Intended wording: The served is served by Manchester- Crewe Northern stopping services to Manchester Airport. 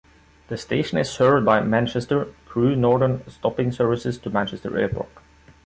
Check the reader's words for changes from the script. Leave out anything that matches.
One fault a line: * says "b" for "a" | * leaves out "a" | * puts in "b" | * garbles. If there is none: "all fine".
* says "station" for "served"